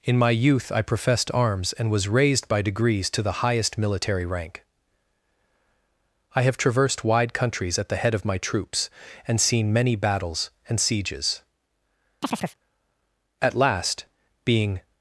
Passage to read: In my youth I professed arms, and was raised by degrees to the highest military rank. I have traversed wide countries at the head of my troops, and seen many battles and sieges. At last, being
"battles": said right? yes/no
yes